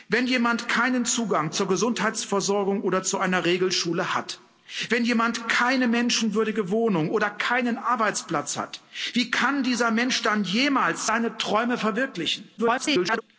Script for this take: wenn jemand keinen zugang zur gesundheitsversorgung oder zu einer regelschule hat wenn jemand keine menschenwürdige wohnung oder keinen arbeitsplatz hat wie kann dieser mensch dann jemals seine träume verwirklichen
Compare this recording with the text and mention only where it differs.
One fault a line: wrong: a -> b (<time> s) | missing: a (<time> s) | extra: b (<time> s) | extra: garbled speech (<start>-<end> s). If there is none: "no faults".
extra: garbled speech (12.6-13.2 s)